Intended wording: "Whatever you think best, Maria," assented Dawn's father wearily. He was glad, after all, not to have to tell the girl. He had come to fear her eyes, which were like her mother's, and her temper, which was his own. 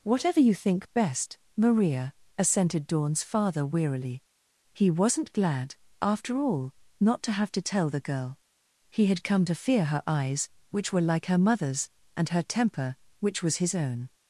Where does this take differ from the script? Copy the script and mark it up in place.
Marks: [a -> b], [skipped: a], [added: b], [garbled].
"Whatever you think best, Maria," assented Dawn's father wearily. He [was -> wasn't] glad, after all, not to have to tell the girl. He had come to fear her eyes, which were like her mother's, and her temper, which was his own.